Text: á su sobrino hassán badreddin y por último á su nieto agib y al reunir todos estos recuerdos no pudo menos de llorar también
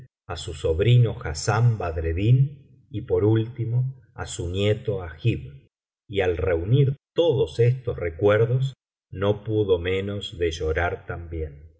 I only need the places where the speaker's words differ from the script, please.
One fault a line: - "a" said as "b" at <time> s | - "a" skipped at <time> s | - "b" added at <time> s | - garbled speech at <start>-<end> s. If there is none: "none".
none